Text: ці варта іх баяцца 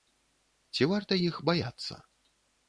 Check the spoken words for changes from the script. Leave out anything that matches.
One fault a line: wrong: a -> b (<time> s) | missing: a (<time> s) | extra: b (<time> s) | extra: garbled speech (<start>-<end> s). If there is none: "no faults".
no faults